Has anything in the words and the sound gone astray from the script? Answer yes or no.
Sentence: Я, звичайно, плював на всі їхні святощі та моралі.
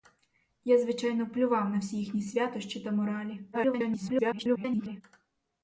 yes